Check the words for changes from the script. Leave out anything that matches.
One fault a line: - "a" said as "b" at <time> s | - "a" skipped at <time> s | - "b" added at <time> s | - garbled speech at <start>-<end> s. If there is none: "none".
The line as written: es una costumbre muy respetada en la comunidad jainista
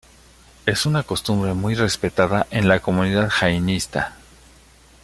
none